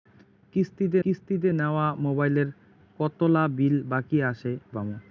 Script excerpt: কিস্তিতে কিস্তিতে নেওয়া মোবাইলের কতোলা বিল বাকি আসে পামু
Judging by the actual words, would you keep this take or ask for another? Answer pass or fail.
pass